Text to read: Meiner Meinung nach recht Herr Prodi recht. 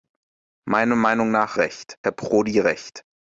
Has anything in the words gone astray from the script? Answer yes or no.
no